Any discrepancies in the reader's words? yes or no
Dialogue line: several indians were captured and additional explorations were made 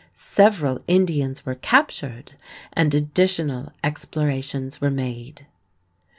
no